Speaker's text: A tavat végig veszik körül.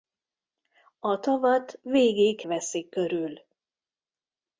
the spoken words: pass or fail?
pass